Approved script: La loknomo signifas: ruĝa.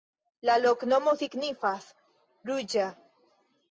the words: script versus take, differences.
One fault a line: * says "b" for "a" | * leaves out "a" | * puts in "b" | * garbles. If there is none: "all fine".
all fine